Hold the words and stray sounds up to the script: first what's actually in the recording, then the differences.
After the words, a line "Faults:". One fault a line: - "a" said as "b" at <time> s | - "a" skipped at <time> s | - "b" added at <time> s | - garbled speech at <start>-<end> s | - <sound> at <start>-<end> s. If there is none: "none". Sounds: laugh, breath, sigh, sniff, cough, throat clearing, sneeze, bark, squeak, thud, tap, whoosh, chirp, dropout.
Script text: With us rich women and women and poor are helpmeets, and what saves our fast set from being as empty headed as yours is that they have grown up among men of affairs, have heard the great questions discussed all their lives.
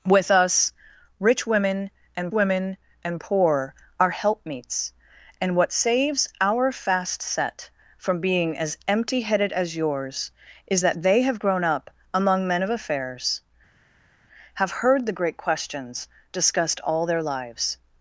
With us rich women and women and poor are helpmeets, and what saves our fast set from being as empty headed as yours is that they have grown up among men of affairs, have heard the great questions discussed all their lives.
Faults:
none